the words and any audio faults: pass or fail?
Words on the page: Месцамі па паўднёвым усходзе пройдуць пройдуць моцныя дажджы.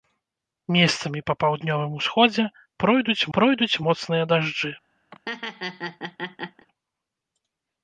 fail